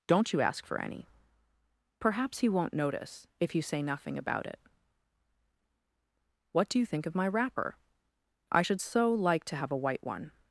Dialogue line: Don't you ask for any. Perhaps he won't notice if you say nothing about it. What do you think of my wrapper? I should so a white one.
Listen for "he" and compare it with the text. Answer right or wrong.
right